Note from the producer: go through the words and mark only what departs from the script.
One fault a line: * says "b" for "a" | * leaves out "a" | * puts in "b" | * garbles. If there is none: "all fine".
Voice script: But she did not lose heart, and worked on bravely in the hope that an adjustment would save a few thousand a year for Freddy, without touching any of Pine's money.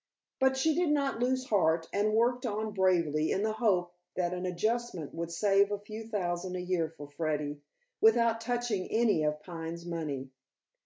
all fine